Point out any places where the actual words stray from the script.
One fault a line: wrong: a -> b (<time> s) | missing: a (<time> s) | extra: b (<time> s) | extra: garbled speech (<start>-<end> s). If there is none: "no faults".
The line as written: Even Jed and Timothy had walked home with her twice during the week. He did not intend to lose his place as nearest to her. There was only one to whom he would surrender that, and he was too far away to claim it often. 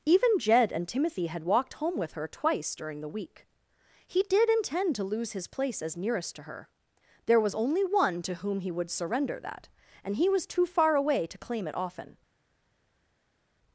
missing: not (4.5 s)